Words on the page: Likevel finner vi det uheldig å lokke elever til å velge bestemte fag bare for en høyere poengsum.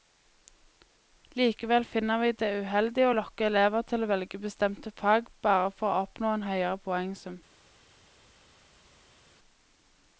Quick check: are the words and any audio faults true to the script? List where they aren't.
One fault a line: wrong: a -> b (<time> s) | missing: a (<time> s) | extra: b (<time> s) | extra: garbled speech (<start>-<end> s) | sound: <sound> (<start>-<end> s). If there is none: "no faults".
extra: å oppnå (5.9 s)